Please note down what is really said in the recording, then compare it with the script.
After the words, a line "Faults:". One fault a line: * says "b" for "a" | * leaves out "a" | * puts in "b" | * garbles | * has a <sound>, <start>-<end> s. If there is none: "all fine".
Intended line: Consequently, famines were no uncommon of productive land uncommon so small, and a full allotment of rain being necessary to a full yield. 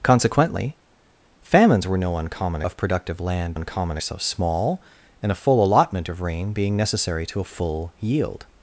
Consequently, famines were no uncommon of productive land uncommon so small, and a full allotment of rain being necessary to a full yield.
Faults:
all fine